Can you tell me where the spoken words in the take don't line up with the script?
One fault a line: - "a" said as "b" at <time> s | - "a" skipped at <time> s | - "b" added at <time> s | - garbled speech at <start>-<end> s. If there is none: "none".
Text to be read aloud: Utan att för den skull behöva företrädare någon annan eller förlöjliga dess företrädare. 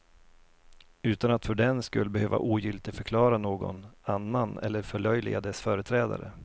- "företrädare" said as "ogiltigförklara" at 2.4 s